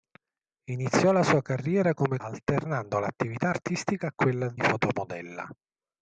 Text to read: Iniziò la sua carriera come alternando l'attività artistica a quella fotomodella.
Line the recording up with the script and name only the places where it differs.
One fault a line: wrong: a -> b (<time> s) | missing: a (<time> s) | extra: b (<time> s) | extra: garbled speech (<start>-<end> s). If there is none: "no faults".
no faults